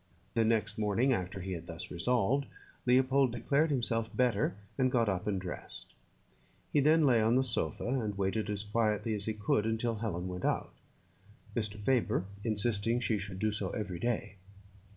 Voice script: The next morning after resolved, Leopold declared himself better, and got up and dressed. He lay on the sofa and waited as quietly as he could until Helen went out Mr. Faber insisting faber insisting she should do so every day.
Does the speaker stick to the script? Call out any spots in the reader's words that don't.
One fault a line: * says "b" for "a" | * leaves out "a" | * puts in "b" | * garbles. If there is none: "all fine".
* puts in "he had thus"
* puts in "then"
* leaves out "faber insisting"